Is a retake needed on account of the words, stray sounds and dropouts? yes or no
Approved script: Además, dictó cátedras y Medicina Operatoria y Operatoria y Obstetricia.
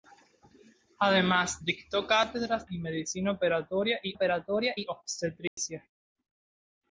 yes